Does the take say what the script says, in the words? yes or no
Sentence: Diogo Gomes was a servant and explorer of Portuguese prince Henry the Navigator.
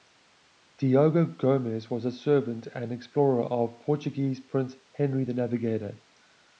yes